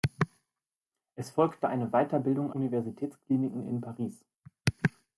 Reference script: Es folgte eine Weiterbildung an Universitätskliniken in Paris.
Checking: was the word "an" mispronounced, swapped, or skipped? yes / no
yes